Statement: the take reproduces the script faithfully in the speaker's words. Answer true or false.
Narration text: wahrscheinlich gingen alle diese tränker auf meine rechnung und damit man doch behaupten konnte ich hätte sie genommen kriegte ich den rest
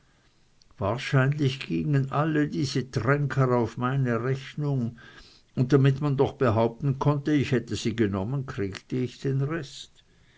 true